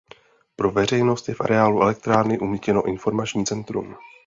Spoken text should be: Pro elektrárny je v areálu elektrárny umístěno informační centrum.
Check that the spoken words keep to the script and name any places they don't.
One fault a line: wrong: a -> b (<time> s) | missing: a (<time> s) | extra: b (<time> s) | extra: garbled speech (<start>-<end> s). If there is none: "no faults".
wrong: elektrárny -> veřejnost (0.7 s)